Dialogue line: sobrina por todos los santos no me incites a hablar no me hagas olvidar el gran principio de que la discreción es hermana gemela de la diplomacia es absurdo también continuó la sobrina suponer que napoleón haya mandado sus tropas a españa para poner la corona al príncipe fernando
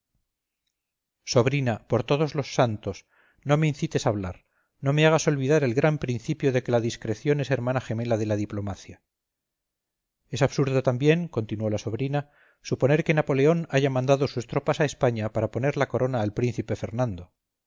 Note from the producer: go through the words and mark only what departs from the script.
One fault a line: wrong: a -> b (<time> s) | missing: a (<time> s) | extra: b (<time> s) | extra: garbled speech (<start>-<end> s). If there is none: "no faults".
no faults